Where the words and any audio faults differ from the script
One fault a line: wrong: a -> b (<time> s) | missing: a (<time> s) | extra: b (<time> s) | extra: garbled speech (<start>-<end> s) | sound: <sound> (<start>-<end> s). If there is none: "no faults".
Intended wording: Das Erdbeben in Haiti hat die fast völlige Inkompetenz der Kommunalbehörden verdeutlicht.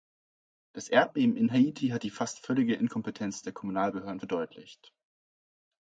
no faults